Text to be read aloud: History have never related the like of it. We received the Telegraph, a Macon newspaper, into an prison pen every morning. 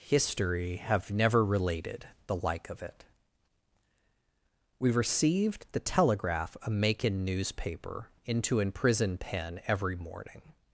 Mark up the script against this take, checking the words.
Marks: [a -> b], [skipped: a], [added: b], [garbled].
History have never related the like of it. We received the Telegraph, a Macon newspaper, into an prison pen every morning.